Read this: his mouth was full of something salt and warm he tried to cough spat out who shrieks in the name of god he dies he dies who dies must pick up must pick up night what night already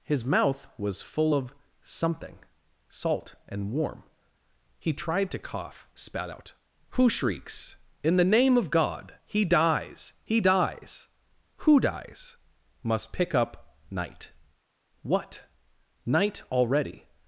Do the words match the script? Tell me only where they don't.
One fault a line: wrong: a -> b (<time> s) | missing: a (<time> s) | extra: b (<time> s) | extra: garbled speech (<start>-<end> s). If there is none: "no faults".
missing: must pick up (13.8 s)